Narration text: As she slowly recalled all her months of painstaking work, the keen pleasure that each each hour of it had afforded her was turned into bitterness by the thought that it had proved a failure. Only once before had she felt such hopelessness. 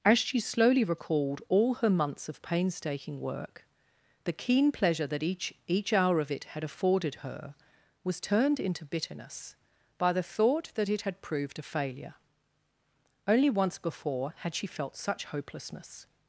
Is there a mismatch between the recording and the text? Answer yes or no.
no